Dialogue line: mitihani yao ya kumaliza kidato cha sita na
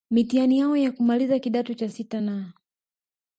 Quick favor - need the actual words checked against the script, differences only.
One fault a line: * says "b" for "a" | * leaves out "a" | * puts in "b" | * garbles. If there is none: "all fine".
all fine